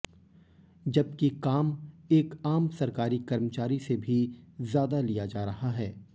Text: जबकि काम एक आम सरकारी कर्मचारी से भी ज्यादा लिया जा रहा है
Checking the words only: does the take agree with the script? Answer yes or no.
yes